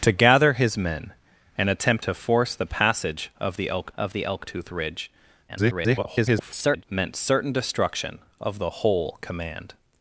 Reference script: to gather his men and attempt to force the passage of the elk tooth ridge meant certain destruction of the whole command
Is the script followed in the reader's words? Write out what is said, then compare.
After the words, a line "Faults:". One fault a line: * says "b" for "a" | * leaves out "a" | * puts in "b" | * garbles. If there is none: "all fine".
to gather his men and attempt to force the passage of the elk of the elk tooth ridge [garbled] meant certain destruction of the whole command
Faults:
* puts in "of the elk"
* garbles